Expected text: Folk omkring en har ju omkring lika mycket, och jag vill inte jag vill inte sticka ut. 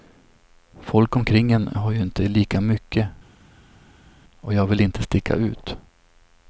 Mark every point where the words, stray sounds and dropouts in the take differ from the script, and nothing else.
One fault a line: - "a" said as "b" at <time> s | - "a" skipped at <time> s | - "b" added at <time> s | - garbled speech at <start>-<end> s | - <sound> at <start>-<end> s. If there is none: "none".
- "omkring" said as "inte" at 2.0 s
- "jag vill inte" skipped at 5.0 s